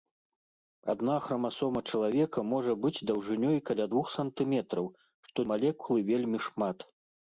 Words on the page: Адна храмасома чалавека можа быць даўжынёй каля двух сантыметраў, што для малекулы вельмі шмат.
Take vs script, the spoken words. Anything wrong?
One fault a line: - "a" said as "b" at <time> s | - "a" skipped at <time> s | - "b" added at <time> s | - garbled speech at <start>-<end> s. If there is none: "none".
- "для" skipped at 5.4 s